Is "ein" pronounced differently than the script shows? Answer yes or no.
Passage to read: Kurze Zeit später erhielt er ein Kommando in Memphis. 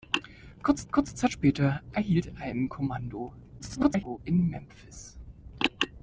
no